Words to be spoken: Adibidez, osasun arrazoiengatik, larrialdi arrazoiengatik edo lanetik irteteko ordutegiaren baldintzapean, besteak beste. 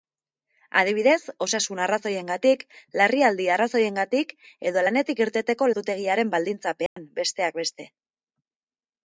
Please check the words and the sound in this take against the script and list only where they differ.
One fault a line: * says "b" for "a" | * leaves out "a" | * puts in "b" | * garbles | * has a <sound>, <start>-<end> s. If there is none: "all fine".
* has a dropout, 6.9-7.0 s